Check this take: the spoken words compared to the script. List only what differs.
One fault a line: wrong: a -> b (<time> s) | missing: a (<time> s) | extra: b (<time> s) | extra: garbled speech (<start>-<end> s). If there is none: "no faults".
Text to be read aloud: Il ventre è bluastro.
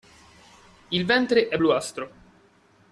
no faults